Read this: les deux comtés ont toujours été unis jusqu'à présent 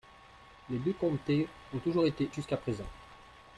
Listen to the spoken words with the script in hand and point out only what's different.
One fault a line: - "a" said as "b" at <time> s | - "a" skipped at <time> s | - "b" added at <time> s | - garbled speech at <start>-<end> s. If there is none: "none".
- "unis" skipped at 2.3 s